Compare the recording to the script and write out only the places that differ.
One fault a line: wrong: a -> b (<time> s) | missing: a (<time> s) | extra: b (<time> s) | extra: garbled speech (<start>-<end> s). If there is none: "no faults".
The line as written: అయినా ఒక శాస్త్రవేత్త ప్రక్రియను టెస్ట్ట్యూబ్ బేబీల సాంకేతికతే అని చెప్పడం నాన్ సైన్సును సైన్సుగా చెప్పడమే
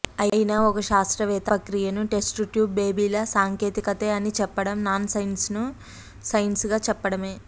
no faults